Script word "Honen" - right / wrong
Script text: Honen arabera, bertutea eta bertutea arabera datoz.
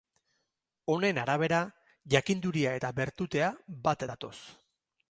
right